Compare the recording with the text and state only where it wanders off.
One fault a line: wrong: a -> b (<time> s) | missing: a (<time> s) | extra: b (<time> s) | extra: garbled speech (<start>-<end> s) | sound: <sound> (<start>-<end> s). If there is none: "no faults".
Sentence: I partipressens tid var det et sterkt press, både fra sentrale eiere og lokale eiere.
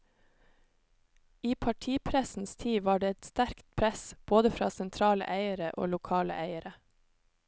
no faults